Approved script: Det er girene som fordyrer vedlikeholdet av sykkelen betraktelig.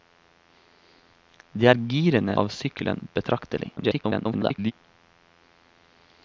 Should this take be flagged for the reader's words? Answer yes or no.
yes